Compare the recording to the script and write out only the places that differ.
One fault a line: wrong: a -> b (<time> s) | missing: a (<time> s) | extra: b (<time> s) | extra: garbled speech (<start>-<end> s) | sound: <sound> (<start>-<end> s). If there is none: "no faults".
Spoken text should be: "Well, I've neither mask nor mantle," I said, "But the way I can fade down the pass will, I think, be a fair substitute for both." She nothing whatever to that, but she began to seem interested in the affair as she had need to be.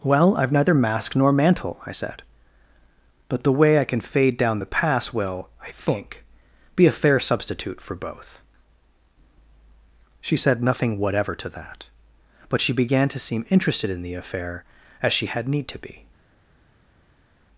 extra: said (10.4 s)